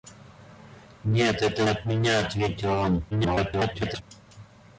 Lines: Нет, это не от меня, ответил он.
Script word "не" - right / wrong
wrong